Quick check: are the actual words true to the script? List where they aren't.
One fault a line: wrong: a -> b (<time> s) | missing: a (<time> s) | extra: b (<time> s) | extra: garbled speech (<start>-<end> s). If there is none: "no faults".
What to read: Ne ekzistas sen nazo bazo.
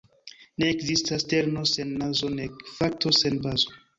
extra: terno (1.3 s)
extra: nek fakto sen (2.4 s)